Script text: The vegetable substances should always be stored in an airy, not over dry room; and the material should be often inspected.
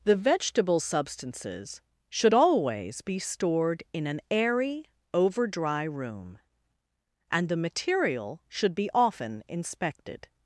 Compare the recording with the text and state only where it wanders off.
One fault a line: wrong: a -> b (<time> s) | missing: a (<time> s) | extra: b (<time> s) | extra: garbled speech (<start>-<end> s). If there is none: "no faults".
missing: not (4.9 s)